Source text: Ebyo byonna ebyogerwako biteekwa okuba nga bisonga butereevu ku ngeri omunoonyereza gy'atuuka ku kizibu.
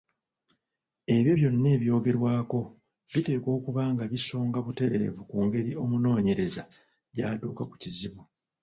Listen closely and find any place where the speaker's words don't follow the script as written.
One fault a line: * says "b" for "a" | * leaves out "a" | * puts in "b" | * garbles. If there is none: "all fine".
all fine